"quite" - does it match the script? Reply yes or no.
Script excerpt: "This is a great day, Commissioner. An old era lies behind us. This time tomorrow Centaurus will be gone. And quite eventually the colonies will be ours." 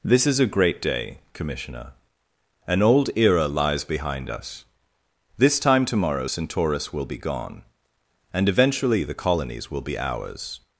no